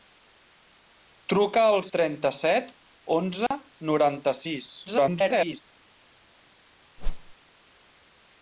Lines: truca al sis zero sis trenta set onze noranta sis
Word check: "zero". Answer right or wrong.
wrong